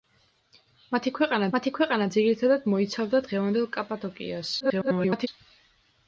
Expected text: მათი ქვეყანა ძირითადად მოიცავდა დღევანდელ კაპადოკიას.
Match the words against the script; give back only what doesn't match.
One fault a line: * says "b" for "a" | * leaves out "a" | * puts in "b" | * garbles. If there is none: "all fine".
* puts in "მათი ქვეყანა"
* garbles